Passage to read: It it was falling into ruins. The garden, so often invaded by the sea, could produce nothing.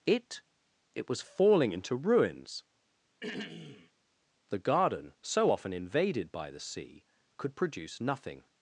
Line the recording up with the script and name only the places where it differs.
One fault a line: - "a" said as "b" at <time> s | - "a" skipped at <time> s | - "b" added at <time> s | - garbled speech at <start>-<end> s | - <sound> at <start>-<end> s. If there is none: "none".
- throat clearing at 3.2-3.9 s